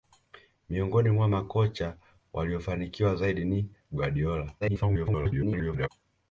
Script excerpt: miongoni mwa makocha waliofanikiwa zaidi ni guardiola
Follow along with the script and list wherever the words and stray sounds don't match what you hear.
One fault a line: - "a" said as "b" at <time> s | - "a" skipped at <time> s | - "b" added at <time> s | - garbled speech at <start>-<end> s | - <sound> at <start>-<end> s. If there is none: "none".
- garbled speech at 4.6-5.9 s